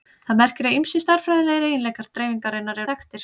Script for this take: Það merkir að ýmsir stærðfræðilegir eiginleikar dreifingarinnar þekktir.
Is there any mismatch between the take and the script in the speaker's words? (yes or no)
no